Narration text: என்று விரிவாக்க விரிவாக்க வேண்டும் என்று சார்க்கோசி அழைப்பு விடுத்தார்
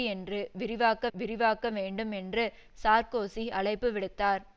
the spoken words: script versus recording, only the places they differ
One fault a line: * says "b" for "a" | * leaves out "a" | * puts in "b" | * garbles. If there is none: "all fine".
all fine